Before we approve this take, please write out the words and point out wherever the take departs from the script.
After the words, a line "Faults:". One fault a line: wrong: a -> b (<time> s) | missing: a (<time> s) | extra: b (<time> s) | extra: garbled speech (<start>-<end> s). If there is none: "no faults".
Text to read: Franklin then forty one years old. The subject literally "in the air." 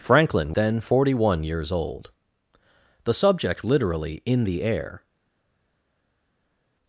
Franklin then forty one years old. The subject literally "in the air."
Faults:
no faults